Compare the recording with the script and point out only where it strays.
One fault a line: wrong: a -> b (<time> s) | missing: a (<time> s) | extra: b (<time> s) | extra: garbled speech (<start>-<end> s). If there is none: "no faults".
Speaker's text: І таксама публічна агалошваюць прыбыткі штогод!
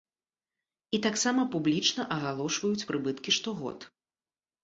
no faults